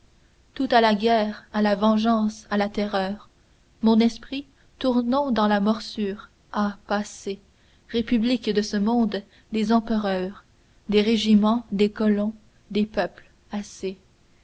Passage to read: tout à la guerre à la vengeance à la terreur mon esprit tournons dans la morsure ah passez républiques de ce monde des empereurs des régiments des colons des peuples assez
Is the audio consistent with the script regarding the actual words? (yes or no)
yes